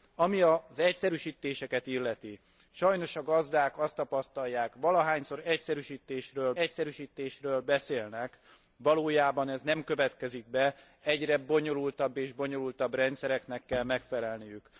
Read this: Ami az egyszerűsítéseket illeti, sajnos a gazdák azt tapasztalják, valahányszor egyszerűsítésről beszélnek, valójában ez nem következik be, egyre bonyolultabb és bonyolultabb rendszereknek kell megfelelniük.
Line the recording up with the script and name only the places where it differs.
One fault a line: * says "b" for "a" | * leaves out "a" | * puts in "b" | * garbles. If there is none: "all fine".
* puts in "egyszerűsítésről"